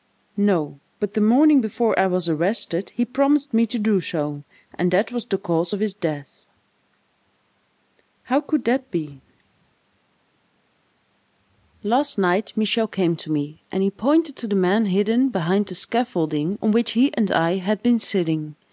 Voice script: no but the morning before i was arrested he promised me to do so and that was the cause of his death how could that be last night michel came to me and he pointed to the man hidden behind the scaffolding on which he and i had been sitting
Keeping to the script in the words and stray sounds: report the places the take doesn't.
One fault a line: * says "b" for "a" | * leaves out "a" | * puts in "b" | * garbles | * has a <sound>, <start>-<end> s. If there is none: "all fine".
all fine